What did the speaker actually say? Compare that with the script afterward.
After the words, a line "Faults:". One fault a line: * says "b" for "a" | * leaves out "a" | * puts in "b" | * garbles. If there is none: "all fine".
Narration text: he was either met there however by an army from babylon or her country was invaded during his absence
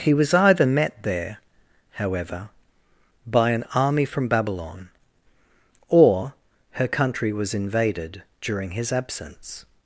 he was either met there however by an army from babylon or her country was invaded during his absence
Faults:
all fine